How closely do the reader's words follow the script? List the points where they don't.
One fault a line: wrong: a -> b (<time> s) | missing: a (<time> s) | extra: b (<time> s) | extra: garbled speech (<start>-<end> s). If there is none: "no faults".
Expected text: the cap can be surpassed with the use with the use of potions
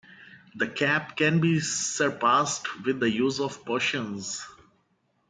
missing: with the use (3.4 s)